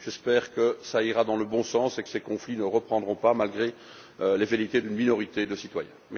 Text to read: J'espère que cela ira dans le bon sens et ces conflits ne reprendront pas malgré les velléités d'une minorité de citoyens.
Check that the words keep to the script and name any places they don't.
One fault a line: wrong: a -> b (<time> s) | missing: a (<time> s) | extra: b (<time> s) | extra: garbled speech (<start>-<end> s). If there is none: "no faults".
no faults